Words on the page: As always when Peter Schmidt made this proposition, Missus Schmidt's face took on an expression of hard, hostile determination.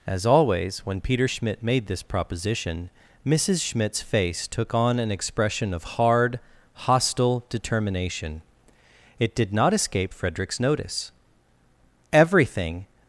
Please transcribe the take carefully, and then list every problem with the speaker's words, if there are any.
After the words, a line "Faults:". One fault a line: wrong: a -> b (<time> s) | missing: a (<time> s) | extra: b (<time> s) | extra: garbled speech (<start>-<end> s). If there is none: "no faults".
As always when Peter Schmidt made this proposition, Missus Schmidt's face took on an expression of hard, hostile determination. It did not escape Frederick's notice. Everything
Faults:
extra: It did not escape Frederick's notice Everything (9.2 s)